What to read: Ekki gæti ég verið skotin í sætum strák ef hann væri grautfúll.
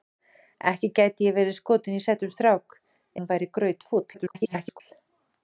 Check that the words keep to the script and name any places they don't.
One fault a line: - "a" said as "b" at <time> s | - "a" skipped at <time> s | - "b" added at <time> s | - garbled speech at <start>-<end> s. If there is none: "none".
- "ef" skipped at 2.8 s
- garbled speech at 4.1-4.8 s